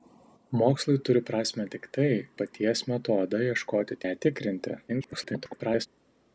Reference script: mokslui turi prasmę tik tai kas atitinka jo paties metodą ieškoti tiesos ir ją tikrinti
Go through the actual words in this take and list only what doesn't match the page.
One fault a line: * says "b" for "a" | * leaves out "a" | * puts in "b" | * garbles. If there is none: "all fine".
* leaves out "kas atitinka jo"
* leaves out "tiesos ir"
* garbles